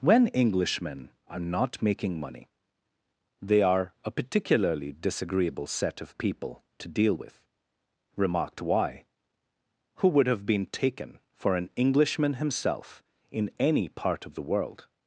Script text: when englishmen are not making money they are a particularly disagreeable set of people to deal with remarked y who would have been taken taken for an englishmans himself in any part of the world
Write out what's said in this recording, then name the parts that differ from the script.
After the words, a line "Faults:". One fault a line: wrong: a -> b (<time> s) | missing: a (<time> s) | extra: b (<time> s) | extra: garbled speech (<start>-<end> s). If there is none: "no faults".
when englishmen are not making money they are a particularly disagreeable set of people to deal with remarked y who would have been taken for an englishman himself in any part of the world
Faults:
missing: taken (11.2 s)
wrong: englishmans -> englishman (11.8 s)